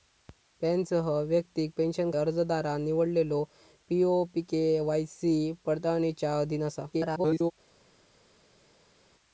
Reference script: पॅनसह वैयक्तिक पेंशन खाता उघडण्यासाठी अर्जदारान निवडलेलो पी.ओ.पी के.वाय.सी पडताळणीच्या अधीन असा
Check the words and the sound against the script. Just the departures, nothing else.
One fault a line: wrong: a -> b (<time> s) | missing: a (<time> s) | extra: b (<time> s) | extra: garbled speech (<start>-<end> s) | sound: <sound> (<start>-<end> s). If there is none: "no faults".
missing: खाता उघडण्यासाठी (2.1 s)
extra: garbled speech (6.9-7.5 s)